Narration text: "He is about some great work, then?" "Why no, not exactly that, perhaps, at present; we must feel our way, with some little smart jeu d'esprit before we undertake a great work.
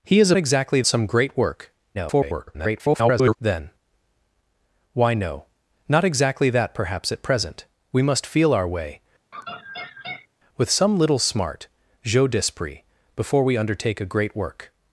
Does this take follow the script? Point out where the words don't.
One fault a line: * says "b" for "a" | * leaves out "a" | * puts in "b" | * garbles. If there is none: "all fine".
* says "exactly" for "about"
* garbles